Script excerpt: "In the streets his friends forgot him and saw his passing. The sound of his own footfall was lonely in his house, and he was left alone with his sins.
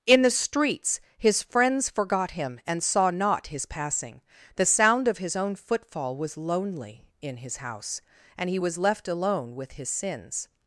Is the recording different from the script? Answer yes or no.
yes